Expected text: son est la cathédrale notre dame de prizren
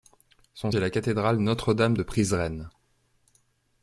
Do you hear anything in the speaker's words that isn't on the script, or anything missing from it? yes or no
no